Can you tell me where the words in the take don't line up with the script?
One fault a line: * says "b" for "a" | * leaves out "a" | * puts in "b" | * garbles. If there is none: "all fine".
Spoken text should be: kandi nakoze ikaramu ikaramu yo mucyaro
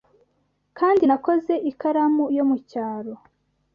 * leaves out "ikaramu"